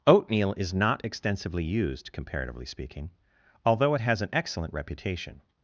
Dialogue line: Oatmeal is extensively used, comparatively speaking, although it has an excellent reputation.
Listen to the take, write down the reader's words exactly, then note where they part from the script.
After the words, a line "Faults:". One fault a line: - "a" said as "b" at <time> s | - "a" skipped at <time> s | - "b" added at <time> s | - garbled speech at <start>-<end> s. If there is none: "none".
Oatmeal is not extensively used, comparatively speaking, although it has an excellent reputation.
Faults:
- "not" added at 0.7 s